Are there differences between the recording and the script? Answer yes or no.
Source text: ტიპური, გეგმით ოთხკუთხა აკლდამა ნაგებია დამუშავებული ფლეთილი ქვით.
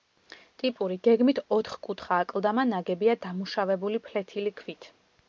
no